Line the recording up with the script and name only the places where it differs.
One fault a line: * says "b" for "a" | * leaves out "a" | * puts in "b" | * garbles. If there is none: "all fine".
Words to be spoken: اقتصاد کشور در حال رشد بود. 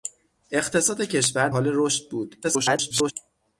* leaves out "در"
* garbles